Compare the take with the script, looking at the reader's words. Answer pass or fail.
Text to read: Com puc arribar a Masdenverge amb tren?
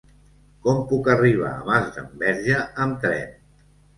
pass